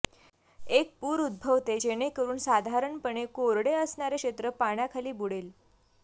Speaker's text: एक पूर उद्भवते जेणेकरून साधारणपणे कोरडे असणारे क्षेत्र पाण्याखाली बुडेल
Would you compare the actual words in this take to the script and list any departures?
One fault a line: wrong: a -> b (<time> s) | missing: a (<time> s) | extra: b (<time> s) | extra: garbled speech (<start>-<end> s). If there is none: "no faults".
no faults